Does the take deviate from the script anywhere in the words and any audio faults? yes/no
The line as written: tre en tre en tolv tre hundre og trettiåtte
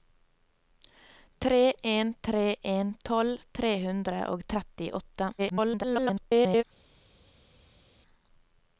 yes